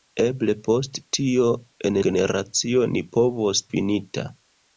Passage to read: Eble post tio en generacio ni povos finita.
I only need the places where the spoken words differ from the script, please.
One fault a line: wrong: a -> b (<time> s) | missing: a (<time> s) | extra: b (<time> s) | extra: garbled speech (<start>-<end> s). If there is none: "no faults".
no faults